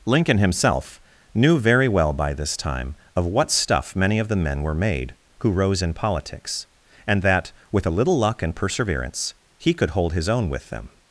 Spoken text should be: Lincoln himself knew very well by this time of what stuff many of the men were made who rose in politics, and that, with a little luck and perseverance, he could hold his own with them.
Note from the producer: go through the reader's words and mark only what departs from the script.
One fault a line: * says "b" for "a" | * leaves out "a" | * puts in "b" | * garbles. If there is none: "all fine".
all fine